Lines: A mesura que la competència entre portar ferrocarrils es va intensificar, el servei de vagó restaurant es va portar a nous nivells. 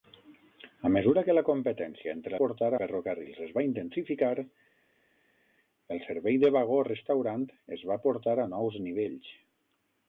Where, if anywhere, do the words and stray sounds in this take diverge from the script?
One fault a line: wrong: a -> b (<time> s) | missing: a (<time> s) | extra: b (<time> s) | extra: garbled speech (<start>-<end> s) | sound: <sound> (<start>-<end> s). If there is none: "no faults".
no faults